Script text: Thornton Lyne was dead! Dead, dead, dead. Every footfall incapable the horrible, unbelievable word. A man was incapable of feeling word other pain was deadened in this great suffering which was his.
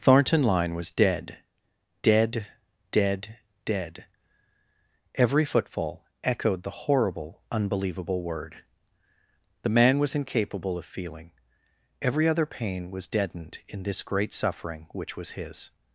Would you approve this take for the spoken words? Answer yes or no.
no